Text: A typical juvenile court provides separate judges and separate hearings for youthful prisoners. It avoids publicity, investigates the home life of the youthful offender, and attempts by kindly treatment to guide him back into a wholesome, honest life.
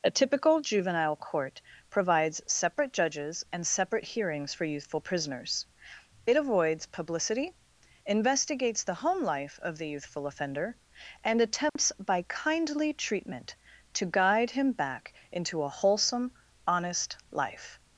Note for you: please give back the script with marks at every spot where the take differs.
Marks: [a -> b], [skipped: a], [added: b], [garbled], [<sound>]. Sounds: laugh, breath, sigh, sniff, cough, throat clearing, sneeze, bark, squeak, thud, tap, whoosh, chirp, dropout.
A typical juvenile court provides separate judges and separate hearings for youthful prisoners. It avoids publicity, investigates the home life of the youthful offender, and attempts [dropout] by kindly treatment to guide him back into a wholesome, honest life.